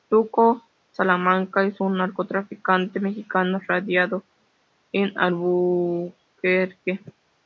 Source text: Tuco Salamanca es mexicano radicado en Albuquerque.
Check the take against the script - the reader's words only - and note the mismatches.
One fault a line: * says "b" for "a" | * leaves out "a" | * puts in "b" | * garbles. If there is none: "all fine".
* puts in "un narcotraficante"